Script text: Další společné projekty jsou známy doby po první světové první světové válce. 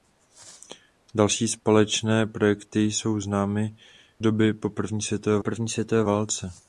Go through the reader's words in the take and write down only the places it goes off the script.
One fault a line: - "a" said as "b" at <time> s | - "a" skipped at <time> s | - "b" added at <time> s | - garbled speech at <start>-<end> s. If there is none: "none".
none